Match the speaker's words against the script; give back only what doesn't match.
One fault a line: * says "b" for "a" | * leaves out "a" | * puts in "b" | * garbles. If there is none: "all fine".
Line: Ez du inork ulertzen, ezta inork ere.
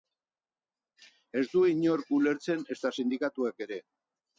* says "sindikatuek" for "inork"